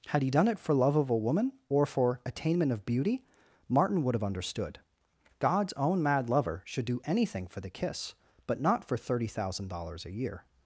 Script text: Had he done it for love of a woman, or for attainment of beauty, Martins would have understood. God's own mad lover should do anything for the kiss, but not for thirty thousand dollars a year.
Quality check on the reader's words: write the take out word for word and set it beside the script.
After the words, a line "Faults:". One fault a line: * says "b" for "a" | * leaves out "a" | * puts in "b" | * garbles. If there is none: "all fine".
Had he done it for love of a woman, or for attainment of beauty, Martin would have understood. God's own mad lover should do anything for the kiss, but not for thirty thousand dollars a year.
Faults:
* says "Martin" for "Martins"